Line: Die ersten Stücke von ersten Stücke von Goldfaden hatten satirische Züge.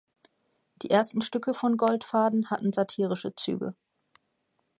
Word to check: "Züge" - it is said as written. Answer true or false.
true